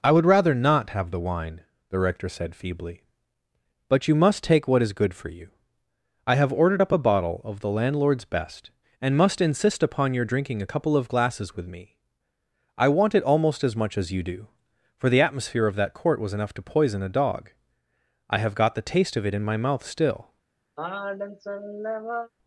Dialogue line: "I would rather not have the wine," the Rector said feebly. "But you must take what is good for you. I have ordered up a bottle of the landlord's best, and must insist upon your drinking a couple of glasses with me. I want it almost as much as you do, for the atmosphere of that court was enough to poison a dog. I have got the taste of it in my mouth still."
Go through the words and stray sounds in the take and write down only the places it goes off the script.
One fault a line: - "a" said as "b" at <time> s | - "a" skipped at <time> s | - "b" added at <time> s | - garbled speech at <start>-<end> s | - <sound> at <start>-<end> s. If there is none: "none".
- sigh at 20.8-22.3 s